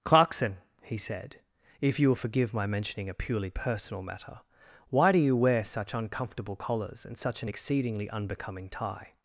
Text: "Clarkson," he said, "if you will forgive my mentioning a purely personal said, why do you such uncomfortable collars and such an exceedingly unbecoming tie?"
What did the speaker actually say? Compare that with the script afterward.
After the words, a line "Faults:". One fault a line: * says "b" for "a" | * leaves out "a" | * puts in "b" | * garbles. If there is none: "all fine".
"Clarkson," he said, "if you will forgive my mentioning a purely personal matter, why do you wear such uncomfortable collars and such an exceedingly unbecoming tie?"
Faults:
* says "matter" for "said"
* puts in "wear"